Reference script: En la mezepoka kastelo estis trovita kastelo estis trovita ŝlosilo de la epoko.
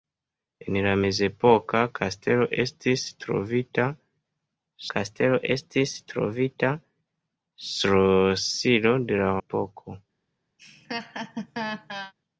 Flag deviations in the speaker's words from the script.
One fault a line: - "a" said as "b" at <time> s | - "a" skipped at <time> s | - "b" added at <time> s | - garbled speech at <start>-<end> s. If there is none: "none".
none